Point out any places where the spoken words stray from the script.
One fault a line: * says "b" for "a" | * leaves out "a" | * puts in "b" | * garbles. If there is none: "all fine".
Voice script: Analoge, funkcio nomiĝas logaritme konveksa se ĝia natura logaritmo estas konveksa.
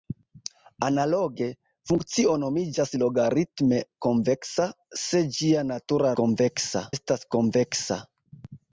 * says "konveksa" for "logaritmo"